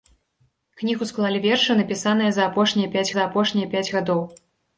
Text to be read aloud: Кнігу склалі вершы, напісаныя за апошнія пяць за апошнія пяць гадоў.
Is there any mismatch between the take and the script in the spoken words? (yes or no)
no